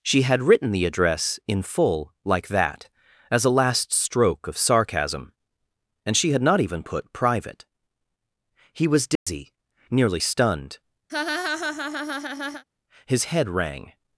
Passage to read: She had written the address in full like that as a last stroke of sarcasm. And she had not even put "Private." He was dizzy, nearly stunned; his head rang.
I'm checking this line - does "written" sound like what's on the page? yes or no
yes